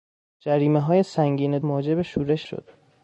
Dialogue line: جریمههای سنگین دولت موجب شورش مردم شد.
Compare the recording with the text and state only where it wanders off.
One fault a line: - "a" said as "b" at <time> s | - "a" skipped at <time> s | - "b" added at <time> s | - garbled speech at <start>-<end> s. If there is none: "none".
- "دولت" skipped at 1.6 s
- "مردم" skipped at 2.5 s